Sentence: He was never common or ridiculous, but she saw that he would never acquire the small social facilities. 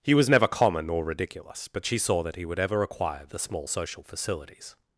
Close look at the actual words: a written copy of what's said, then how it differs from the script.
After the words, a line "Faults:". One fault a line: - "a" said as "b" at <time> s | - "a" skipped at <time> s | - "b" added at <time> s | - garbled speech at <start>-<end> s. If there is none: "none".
He was never common or ridiculous, but she saw that he would ever acquire the small social facilities.
Faults:
- "never" said as "ever" at 2.6 s